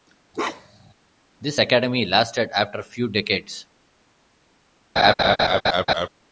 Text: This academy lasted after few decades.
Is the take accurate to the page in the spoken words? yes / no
yes